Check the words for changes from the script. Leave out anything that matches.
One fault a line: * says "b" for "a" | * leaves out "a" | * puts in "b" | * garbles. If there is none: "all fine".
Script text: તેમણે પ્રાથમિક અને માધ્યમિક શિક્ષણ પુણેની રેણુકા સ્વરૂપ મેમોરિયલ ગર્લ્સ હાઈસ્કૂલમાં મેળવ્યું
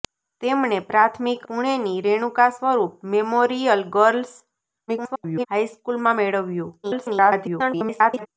* leaves out "અને માધ્યમિક શિક્ષણ"
* garbles
* garbles